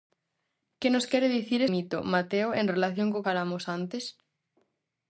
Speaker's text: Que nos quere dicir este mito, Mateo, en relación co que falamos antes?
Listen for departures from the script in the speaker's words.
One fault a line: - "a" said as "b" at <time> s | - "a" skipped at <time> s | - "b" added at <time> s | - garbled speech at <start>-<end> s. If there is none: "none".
- "este" skipped at 1.6 s
- "que" skipped at 3.2 s